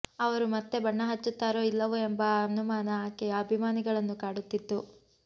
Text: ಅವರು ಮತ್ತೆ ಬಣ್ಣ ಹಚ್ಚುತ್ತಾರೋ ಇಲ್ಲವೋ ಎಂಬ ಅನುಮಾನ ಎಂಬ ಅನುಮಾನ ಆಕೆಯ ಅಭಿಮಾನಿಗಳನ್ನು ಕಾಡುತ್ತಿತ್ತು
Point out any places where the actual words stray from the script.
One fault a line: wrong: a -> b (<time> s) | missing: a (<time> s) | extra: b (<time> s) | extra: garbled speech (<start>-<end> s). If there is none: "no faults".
missing: ಎಂಬ ಅನುಮಾನ (2.9 s)